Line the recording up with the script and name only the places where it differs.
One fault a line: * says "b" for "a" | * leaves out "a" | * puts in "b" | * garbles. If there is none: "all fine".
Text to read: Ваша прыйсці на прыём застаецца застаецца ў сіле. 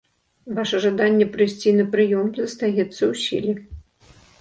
* puts in "жаданне"
* leaves out "застаецца"